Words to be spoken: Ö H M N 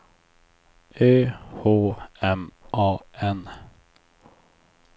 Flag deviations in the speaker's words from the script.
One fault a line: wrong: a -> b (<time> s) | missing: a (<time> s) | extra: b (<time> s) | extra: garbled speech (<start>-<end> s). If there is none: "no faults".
extra: A (2.7 s)